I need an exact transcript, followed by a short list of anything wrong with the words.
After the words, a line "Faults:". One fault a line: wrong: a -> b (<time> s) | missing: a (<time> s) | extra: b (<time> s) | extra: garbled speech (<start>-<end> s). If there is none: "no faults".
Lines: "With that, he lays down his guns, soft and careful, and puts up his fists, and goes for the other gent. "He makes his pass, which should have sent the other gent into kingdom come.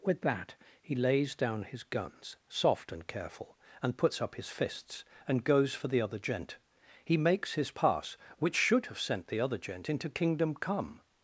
"With that, he lays down his guns, soft and careful, and puts up his fists, and goes for the other gent. "He makes his pass, which should have sent the other gent into kingdom come.
Faults:
no faults